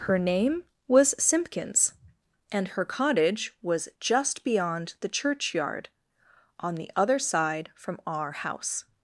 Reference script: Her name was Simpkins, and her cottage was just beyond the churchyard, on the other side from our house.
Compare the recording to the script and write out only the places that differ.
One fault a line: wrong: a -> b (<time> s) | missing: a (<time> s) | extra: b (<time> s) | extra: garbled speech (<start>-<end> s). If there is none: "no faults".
no faults